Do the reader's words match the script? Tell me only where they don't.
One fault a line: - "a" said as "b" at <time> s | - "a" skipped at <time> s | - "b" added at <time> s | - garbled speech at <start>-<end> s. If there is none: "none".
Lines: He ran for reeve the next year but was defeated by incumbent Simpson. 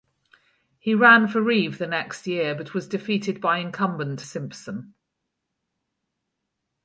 none